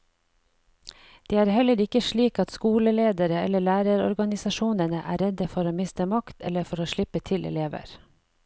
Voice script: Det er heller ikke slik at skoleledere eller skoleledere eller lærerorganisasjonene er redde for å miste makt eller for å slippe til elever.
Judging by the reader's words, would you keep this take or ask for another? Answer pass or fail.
fail